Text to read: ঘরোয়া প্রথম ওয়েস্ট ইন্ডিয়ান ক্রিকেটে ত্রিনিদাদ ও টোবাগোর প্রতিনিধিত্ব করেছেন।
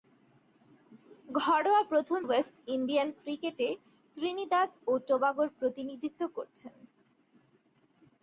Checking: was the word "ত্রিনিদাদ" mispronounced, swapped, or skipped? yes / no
no